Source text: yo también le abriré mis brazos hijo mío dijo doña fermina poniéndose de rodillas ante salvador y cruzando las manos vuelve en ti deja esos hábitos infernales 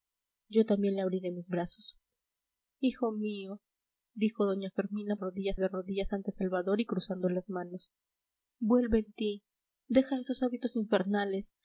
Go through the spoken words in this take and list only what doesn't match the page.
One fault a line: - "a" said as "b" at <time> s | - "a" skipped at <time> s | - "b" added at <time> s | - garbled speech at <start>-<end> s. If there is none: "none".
- "poniéndose" said as "rodillas" at 5.2 s